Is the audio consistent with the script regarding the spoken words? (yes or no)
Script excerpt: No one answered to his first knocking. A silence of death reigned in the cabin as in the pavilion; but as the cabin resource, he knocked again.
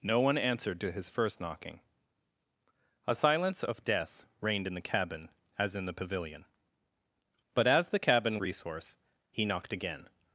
yes